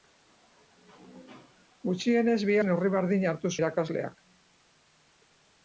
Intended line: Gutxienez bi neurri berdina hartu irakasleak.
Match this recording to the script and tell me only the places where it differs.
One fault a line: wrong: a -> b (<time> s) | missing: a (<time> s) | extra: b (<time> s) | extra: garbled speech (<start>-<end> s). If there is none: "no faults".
no faults